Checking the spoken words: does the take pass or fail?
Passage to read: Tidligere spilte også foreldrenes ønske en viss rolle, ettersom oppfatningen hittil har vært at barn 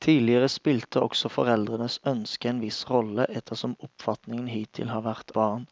fail